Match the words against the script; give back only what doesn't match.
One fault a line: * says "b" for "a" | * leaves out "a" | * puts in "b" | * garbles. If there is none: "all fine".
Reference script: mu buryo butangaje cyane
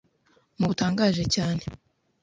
* leaves out "buryo"